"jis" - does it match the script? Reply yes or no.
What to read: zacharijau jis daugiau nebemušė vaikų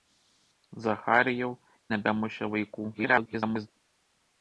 no